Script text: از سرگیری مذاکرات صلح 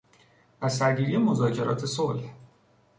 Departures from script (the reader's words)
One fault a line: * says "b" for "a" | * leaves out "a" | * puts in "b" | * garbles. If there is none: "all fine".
all fine